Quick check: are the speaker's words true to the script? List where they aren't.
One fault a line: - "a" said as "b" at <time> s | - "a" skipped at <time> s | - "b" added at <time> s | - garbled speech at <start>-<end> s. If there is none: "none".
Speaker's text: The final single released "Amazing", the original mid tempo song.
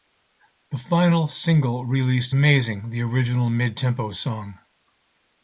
none